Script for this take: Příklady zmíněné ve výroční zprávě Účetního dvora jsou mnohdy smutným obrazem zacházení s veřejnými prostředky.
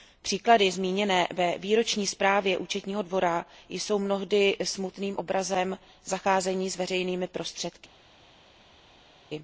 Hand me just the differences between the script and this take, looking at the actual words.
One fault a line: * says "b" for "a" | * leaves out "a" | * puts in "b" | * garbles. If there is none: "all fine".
all fine